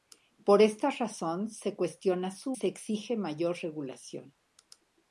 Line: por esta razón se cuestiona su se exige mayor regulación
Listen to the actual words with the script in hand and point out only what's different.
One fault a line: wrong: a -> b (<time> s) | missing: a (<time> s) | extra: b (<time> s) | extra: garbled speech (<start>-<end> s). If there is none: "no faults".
no faults